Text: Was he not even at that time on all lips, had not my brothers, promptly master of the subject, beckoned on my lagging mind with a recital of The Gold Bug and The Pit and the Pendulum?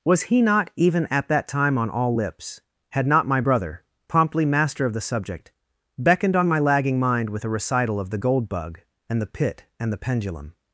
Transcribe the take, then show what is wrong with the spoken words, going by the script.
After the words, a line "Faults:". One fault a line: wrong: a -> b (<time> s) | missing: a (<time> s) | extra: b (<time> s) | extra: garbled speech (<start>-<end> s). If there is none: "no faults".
Was he not even at that time on all lips, had not my brother, promptly master of the subject, beckoned on my lagging mind with a recital of The Gold Bug and The Pit and the Pendulum?
Faults:
wrong: brothers -> brother (3.4 s)